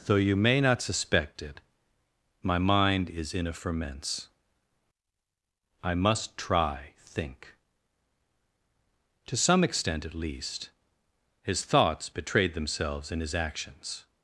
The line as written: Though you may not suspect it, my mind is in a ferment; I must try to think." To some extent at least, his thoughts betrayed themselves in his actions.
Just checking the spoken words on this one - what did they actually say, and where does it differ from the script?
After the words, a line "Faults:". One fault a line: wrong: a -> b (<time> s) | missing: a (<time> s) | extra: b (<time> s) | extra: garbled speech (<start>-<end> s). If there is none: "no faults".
Though you may not suspect it, my mind is in a ferments; I must try think." To some extent at least, his thoughts betrayed themselves in his actions.
Faults:
wrong: ferment -> ferments (3.5 s)
missing: to (6.9 s)